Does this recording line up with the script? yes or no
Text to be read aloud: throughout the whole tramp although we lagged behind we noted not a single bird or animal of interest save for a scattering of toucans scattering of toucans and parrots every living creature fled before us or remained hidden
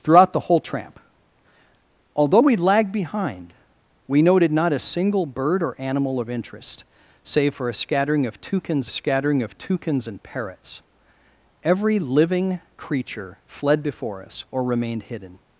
yes